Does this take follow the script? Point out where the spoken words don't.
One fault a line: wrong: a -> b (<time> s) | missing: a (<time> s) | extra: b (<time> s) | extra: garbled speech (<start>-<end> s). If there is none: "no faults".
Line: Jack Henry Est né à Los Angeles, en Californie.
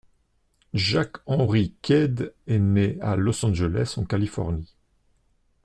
extra: Quaid (1.8 s)